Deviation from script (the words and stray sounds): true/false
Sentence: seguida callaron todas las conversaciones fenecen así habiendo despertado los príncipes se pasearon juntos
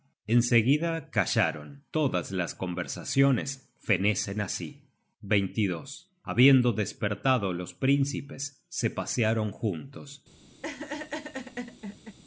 true